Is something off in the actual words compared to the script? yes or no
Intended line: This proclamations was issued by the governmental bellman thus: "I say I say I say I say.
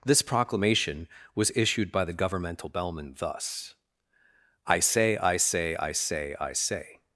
yes